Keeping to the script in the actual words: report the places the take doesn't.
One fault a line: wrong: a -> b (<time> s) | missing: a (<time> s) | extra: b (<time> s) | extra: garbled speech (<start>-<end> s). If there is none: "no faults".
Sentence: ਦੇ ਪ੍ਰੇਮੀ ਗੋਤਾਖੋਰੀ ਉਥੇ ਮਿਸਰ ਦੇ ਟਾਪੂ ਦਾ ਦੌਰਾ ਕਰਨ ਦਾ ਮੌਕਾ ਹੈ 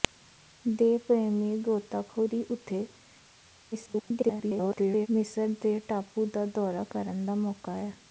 extra: garbled speech (3.7-5.1 s)